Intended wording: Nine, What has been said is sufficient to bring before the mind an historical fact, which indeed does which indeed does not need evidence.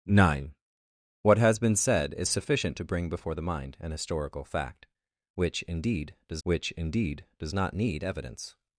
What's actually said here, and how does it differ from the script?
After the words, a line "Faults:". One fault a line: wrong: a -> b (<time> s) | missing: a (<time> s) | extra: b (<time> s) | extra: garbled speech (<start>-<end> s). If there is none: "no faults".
Nine, What has been said is sufficient to bring before the mind an historical fact, which indeed does which indeed does not need evidence.
Faults:
no faults